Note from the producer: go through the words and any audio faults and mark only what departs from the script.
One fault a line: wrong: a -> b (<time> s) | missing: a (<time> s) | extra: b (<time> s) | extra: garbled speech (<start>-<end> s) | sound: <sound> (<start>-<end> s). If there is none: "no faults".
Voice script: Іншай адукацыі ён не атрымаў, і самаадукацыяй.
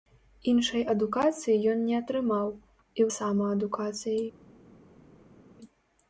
no faults